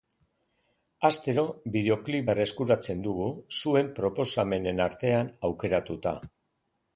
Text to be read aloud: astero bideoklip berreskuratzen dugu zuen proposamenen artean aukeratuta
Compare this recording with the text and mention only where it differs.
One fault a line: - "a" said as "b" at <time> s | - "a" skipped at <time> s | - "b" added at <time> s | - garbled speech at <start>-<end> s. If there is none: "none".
none